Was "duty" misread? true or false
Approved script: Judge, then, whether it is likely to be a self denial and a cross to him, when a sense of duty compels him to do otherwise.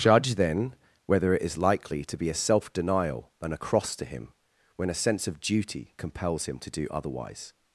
false